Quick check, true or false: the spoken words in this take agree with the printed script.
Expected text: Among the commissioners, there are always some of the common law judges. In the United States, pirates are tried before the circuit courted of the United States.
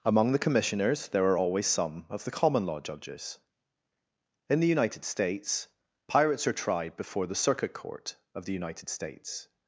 false